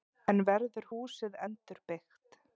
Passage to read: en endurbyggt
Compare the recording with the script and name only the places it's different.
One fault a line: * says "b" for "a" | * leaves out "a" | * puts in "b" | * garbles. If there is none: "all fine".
* puts in "verður húsið"